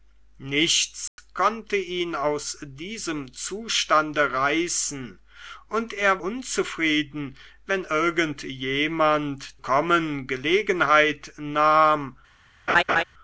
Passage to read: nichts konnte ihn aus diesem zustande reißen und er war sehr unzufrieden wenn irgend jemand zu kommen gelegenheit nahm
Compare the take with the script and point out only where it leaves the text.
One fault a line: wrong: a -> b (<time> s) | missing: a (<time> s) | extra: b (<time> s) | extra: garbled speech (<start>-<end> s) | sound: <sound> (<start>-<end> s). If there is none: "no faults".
sound: dropout (1.1-1.2 s)
missing: war sehr (6.2 s)
missing: zu (9.4 s)
sound: laugh (12.7-13.0 s)